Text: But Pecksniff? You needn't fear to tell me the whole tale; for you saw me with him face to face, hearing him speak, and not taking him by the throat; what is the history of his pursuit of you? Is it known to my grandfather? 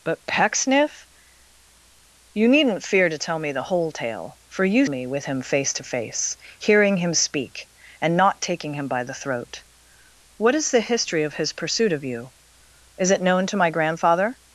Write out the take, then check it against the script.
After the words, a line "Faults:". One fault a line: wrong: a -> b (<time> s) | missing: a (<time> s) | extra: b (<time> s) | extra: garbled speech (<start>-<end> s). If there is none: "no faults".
But Pecksniff? You needn't fear to tell me the whole tale; for you me with him face to face, hearing him speak, and not taking him by the throat; what is the history of his pursuit of you? Is it known to my grandfather?
Faults:
missing: saw (4.9 s)